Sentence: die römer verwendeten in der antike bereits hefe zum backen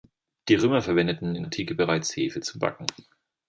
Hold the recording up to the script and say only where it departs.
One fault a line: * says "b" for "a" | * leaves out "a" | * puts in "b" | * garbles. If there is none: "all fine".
* leaves out "der"